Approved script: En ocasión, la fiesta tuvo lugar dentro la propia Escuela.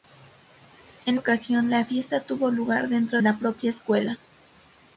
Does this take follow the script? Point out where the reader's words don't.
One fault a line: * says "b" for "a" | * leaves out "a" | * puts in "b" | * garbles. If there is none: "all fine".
all fine